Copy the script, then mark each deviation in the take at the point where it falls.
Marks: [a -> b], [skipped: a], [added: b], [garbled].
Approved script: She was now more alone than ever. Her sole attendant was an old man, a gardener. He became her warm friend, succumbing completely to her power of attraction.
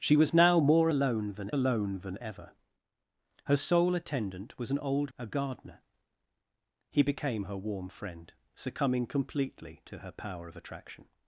She was now more alone than [added: alone than] ever. Her sole attendant was an old [skipped: man,] a gardener. He became her warm friend, succumbing completely to her power of attraction.